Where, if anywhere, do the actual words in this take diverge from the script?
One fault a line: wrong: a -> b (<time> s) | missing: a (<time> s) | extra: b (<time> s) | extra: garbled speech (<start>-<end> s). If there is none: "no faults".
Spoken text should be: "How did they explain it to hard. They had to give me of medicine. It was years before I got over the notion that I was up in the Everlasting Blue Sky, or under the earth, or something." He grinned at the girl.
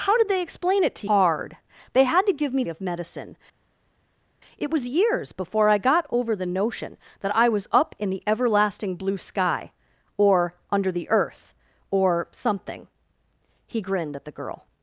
no faults